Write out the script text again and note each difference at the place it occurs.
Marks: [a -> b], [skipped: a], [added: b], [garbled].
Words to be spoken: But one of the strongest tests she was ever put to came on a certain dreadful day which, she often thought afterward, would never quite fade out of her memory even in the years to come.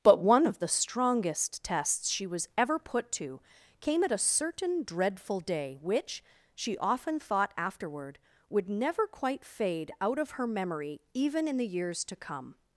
But one of the strongest tests she was ever put to came [on -> at] a certain dreadful day which, she often thought afterward, would never quite fade out of her memory even in the years to come.